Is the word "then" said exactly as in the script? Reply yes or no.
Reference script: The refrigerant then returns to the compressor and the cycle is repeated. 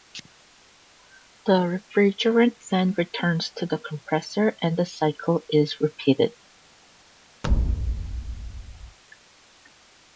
yes